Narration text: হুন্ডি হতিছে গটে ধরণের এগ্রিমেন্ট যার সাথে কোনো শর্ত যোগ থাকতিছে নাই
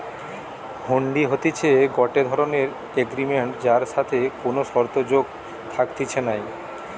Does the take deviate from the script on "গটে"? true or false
false